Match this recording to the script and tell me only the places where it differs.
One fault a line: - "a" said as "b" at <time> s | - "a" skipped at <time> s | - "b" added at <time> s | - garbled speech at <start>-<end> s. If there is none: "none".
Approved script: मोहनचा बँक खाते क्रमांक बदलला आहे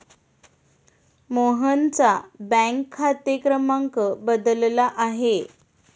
none